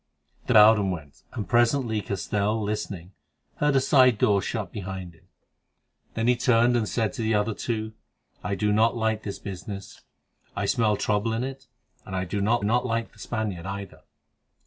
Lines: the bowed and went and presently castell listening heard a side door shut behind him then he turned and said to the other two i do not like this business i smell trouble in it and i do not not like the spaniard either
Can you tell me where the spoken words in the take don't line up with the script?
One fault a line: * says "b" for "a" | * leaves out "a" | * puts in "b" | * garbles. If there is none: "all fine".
all fine